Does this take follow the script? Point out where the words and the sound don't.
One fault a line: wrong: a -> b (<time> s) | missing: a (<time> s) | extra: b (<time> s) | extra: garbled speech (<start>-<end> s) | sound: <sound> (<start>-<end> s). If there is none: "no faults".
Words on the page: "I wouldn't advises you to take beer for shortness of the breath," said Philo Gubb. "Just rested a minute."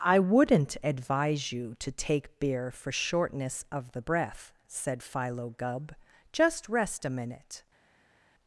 wrong: advises -> advise (0.8 s)
wrong: rested -> rest (6.7 s)